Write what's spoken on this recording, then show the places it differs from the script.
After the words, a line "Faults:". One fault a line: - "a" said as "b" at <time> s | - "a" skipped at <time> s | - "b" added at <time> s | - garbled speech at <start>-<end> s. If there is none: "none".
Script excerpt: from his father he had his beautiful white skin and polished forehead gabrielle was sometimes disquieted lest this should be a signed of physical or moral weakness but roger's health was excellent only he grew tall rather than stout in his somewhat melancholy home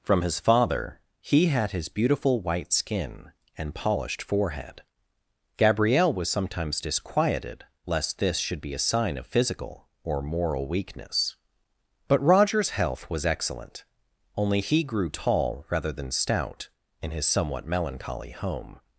from his father he had his beautiful white skin and polished forehead gabrielle was sometimes disquieted lest this should be a sign of physical or moral weakness but roger's health was excellent only he grew tall rather than stout in his somewhat melancholy home
Faults:
- "signed" said as "sign" at 8.8 s